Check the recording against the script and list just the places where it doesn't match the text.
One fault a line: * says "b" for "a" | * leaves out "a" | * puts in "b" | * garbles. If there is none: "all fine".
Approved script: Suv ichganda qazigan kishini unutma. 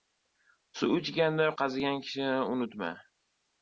all fine